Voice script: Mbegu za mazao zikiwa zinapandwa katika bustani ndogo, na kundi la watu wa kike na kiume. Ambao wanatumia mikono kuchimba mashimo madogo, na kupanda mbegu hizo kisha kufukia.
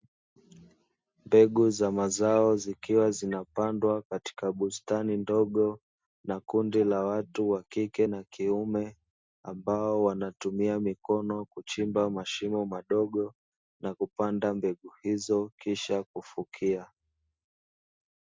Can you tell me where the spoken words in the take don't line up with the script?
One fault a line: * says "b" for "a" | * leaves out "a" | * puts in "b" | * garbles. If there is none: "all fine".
all fine